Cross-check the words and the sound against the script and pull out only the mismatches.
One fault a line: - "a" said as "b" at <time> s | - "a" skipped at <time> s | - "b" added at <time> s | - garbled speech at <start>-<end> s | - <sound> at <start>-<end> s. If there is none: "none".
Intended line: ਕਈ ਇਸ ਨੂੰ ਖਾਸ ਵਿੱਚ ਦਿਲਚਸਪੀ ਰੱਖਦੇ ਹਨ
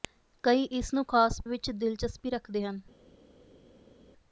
none